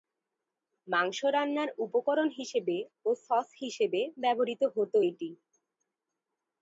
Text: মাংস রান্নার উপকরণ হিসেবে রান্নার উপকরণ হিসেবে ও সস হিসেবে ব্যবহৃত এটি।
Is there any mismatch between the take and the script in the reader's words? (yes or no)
yes